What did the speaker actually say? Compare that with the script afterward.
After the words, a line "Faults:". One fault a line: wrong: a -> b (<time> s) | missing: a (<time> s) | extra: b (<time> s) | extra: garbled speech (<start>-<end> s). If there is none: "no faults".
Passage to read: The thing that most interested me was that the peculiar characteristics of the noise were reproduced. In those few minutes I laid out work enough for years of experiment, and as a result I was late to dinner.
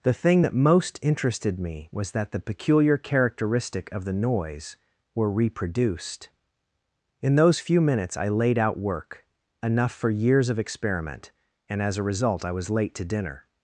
The thing that most interested me was that the peculiar characteristic of the noise were reproduced. In those few minutes I laid out work enough for years of experiment, and as a result I was late to dinner.
Faults:
wrong: characteristics -> characteristic (3.0 s)